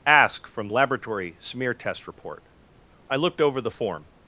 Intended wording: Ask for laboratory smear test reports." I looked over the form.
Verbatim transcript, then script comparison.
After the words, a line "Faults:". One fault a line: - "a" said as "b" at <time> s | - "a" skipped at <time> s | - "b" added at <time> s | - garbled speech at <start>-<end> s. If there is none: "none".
Ask from laboratory smear test report." I looked over the form.
Faults:
- "for" said as "from" at 0.5 s
- "reports" said as "report" at 2.1 s